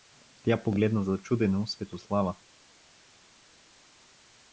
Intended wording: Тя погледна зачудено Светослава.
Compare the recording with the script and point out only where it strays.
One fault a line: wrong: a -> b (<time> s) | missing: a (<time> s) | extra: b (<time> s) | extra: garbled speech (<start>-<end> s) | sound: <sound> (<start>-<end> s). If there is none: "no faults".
no faults